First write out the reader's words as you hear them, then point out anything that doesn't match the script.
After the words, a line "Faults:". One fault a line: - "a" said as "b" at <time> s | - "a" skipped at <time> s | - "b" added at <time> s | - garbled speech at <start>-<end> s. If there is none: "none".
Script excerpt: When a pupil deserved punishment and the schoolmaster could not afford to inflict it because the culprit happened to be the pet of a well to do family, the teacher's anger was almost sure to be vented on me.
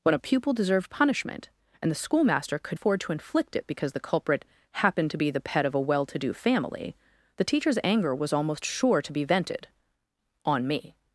When a pupil deserved punishment and the schoolmaster could afford to inflict it because the culprit happened to be the pet of a well to do family, the teacher's anger was almost sure to be vented on me.
Faults:
- "not" skipped at 2.8 s